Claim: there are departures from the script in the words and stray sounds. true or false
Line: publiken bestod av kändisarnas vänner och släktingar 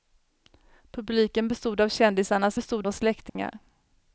true